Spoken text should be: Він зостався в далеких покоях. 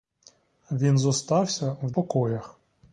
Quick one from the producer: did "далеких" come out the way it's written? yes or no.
no